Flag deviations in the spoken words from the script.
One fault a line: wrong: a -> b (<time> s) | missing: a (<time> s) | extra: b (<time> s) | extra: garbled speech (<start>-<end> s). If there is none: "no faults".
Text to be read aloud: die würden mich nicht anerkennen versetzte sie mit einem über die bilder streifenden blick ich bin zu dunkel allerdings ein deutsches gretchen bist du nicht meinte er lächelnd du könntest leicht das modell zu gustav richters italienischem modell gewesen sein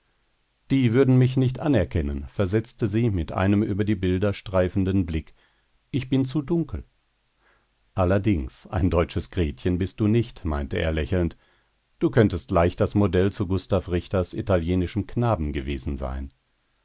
wrong: modell -> knaben (15.1 s)